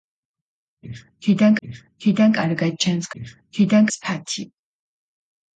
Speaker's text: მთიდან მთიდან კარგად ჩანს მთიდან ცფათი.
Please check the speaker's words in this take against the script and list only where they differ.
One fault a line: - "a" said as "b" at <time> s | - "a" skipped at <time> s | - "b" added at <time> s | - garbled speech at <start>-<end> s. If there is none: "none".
none